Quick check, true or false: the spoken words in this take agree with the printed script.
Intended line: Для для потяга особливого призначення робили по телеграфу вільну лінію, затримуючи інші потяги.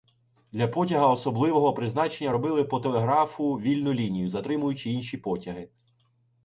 false